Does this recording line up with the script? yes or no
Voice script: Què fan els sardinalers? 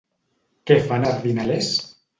no